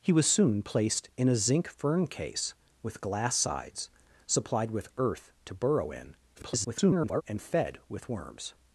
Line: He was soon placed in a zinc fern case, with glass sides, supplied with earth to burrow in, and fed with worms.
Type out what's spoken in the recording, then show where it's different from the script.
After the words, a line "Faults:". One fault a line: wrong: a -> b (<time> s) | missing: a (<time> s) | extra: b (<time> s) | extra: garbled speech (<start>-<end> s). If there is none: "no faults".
He was soon placed in a zinc fern case, with glass sides, supplied with earth to burrow in, [garbled] and fed with worms.
Faults:
extra: garbled speech (6.4-7.2 s)